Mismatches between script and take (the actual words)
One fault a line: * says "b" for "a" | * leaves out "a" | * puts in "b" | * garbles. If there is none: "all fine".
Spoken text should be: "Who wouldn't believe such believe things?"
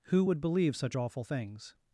* says "would" for "wouldn't"
* says "awful" for "believe"